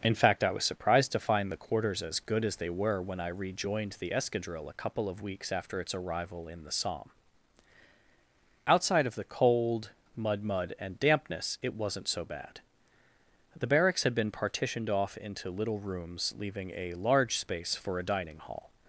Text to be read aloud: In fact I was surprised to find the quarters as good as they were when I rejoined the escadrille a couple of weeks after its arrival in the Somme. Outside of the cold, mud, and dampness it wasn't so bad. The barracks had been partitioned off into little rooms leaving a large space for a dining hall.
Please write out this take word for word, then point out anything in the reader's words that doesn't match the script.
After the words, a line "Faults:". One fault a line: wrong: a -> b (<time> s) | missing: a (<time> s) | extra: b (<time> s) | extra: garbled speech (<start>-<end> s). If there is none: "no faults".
In fact I was surprised to find the quarters as good as they were when I rejoined the escadrille a couple of weeks after its arrival in the Somme. Outside of the cold, mud mud, and dampness it wasn't so bad. The barracks had been partitioned off into little rooms leaving a large space for a dining hall.
Faults:
extra: mud (10.4 s)